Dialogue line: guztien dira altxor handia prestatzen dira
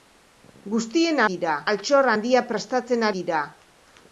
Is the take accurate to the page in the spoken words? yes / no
yes